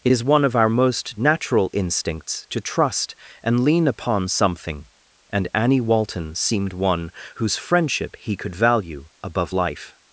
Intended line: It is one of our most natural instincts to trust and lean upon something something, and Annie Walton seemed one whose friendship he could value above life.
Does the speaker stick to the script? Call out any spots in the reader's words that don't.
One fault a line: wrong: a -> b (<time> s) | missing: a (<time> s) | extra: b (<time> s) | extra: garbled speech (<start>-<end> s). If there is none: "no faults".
missing: something (4.9 s)